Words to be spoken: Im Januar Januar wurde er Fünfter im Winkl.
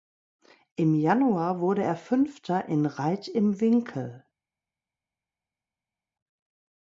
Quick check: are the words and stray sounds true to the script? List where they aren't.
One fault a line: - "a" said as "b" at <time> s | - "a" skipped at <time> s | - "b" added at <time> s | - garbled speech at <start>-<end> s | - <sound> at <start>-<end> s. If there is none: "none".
- "Januar" skipped at 1.6 s
- "in Reit" added at 2.7 s